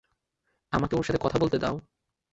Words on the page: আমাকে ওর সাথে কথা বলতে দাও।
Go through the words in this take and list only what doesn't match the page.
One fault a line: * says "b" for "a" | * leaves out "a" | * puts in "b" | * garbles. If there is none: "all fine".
all fine